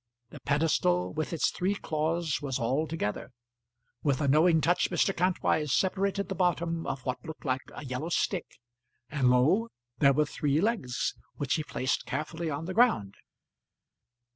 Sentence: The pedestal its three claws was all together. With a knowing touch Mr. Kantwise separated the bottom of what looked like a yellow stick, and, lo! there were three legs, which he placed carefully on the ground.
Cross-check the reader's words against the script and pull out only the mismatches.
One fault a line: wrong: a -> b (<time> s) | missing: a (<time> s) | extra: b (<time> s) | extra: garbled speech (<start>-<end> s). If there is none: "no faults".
extra: with (1.1 s)